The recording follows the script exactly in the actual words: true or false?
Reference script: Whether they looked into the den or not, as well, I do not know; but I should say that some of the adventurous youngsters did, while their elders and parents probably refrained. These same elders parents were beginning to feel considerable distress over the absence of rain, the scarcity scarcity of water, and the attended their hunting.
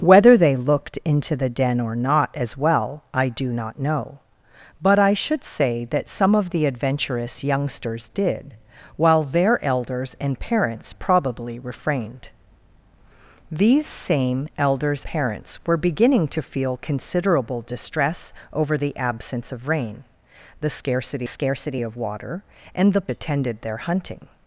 true